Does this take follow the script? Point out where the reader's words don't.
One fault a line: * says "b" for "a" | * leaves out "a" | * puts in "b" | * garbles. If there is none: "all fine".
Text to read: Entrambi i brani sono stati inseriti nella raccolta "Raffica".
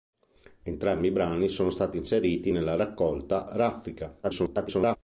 * garbles